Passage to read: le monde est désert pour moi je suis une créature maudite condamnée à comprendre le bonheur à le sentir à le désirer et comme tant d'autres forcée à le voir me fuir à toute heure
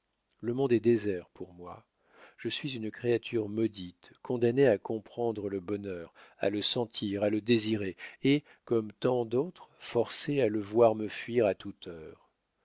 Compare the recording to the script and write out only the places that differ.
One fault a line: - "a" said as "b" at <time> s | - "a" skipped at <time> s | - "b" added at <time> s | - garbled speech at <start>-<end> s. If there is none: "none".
none